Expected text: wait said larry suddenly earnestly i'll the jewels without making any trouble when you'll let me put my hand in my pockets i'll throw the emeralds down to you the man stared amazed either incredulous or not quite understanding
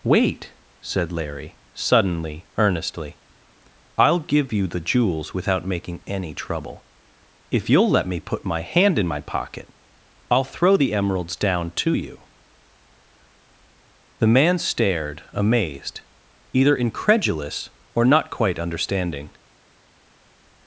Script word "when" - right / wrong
wrong